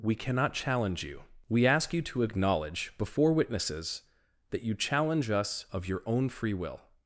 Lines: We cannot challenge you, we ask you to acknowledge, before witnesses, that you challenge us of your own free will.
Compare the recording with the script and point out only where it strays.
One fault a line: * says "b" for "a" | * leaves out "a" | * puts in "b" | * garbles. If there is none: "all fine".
all fine